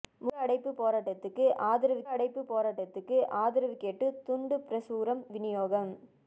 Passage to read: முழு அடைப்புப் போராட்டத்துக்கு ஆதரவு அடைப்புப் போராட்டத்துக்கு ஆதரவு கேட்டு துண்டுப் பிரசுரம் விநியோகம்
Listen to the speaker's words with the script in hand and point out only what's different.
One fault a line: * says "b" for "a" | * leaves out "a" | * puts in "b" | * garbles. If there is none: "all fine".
all fine